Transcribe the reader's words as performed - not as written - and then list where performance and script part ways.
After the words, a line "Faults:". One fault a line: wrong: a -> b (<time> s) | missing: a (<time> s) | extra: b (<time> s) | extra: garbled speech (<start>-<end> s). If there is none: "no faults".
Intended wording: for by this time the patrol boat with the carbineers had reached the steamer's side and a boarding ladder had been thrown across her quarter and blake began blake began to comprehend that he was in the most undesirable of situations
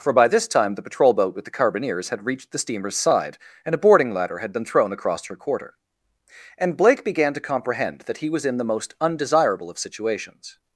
for by this time the patrol boat with the carbineers had reached the steamer's side and a boarding ladder had been thrown across her quarter and blake began to comprehend that he was in the most undesirable of situations
Faults:
missing: blake began (7.3 s)